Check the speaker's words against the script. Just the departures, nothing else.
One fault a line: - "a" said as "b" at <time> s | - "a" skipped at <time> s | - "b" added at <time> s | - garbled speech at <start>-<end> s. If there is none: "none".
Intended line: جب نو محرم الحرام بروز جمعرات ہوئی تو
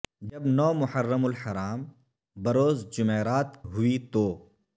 none